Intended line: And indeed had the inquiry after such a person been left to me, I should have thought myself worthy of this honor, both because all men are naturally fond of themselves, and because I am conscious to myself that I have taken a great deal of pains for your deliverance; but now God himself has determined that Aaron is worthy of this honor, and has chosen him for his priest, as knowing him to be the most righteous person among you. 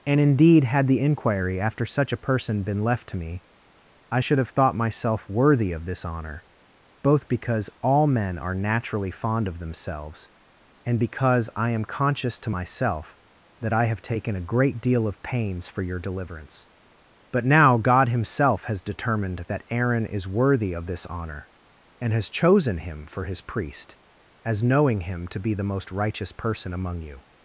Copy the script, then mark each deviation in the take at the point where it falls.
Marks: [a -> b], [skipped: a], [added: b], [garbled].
And indeed had the inquiry after such a person been left to me, I should have thought myself worthy of this honor, both because all men are naturally fond of themselves, and because I am conscious to myself that I have taken a great deal of pains for your deliverance; but now God himself has determined that Aaron is worthy of this honor, and has chosen him for his priest, as knowing him to be the most righteous person among you.